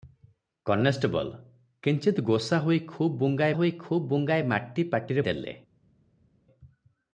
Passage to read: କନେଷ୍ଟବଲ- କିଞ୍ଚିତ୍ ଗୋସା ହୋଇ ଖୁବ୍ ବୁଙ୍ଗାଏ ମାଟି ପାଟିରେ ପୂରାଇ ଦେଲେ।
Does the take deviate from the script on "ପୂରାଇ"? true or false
true